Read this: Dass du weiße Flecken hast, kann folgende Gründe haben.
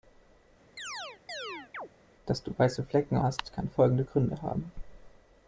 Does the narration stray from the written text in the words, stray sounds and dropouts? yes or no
yes